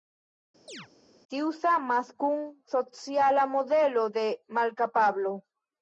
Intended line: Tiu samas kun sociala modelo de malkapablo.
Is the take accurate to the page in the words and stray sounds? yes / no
no